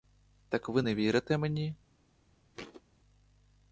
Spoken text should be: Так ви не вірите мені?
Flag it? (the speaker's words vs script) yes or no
no